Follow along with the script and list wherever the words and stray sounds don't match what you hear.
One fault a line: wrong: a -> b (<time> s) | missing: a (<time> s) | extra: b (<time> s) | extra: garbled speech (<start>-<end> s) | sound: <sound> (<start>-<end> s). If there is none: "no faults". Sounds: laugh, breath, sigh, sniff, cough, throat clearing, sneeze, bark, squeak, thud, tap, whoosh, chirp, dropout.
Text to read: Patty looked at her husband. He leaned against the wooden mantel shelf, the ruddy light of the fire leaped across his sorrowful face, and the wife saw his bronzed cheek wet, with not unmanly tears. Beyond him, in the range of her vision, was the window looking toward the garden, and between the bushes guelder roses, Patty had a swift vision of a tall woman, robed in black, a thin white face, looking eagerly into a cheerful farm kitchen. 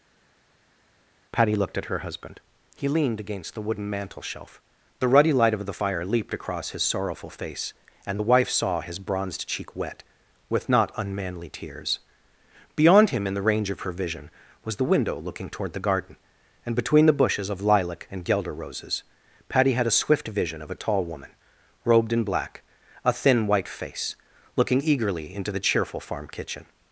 extra: of lilac and (17.5 s)
wrong: a -> the (25.5 s)